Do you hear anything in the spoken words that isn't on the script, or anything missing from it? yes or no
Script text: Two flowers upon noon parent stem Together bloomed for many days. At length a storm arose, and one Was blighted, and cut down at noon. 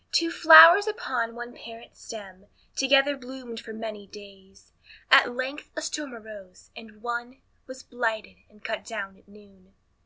yes